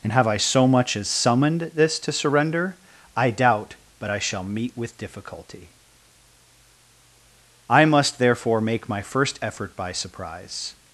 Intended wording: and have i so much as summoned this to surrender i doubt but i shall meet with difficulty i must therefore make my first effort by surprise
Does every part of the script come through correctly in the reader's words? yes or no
yes